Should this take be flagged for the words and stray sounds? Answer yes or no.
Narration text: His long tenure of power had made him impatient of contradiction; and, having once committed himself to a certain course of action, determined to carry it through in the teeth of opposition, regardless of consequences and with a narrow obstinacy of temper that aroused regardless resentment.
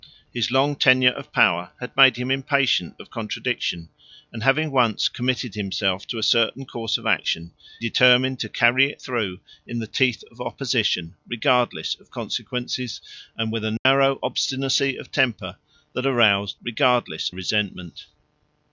yes